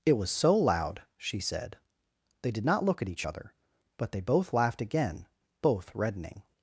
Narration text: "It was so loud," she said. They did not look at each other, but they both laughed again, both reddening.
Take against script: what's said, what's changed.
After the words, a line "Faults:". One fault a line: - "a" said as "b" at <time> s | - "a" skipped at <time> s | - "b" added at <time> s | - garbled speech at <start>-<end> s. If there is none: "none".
"It was so loud," she said. They did not look at each other, but they both laughed again, both reddening.
Faults:
none